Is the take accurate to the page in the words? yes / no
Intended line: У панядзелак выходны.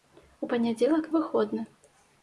yes